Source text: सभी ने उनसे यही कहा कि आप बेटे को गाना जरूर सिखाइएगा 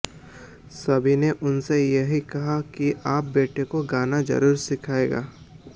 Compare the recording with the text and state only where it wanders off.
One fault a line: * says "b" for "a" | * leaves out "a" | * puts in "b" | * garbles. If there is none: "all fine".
all fine